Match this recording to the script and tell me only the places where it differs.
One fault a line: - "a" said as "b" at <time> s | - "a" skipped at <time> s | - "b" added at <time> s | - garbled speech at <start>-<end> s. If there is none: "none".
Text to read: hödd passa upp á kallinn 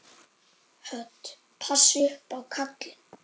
none